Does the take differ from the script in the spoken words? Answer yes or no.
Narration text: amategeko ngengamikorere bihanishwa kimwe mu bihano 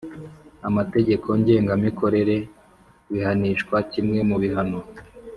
no